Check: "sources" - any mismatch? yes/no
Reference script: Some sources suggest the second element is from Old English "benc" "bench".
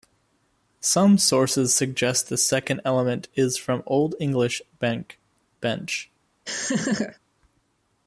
no